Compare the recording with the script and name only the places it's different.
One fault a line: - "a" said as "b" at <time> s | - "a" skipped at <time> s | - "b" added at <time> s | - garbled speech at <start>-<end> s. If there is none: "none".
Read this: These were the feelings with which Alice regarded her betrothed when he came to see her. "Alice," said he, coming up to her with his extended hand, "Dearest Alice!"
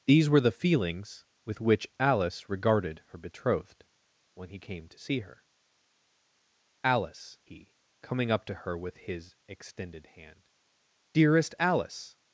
- "said" skipped at 7.4 s